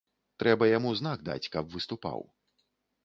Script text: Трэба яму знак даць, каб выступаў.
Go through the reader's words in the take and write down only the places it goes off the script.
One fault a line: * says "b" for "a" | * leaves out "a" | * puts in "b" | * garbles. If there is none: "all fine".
all fine